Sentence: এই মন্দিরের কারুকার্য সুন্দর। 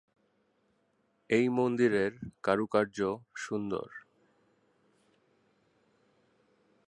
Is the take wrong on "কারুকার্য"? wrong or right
right